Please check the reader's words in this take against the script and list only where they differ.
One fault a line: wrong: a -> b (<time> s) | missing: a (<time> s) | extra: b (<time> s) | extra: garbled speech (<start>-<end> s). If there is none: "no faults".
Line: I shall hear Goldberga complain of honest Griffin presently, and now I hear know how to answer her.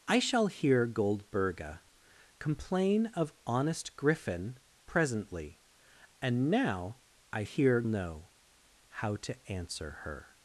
no faults